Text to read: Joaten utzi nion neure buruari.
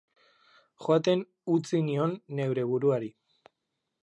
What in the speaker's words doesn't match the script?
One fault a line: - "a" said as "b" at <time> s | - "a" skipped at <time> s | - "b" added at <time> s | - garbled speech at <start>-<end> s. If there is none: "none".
none